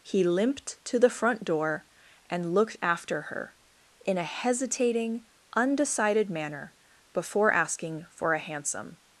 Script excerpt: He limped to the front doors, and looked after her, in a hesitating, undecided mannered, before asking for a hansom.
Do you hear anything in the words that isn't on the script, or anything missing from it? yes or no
yes